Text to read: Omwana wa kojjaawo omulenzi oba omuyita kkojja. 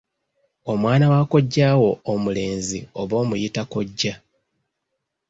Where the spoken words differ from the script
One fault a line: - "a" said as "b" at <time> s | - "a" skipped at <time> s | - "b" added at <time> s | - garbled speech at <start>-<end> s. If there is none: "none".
none